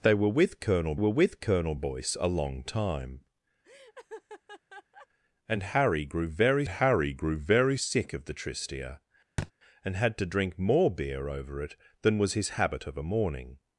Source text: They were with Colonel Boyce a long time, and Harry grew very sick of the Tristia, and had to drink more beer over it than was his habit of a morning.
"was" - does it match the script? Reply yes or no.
yes